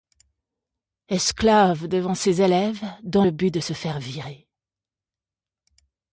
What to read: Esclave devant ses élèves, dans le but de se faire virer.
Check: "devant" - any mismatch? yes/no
no